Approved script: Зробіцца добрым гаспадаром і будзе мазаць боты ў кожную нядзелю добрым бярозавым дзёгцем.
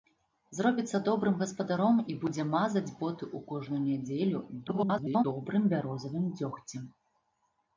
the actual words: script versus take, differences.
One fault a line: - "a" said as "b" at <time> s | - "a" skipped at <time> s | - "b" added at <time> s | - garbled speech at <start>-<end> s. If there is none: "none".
- garbled speech at 4.7-5.2 s